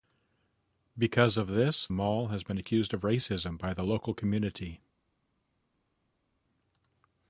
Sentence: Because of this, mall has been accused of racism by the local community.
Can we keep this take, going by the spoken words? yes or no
yes